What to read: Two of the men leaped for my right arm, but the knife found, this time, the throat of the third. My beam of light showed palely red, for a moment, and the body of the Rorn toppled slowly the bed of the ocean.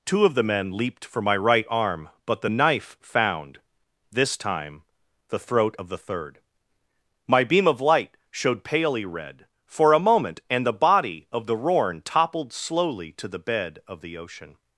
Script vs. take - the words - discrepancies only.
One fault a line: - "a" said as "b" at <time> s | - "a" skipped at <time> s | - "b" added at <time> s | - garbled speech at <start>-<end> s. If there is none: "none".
- "to" added at 13.1 s